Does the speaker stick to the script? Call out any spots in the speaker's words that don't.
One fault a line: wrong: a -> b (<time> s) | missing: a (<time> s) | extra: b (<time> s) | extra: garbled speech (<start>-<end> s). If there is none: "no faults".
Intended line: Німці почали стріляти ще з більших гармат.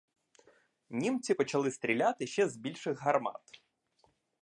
no faults